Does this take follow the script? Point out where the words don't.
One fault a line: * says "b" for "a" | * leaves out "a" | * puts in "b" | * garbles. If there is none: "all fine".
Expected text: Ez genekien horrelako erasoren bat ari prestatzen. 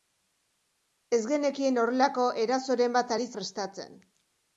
all fine